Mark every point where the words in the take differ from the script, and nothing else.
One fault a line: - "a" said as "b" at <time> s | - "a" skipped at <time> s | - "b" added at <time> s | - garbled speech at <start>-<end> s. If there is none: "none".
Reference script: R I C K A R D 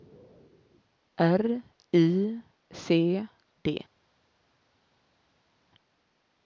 - "K A R" skipped at 3.3 s